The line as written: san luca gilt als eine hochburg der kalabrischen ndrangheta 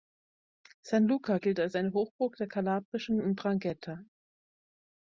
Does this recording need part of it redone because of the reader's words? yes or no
no